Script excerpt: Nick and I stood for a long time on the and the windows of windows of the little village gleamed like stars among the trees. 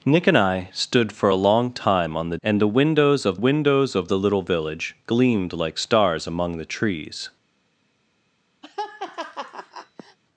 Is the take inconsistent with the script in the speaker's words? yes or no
no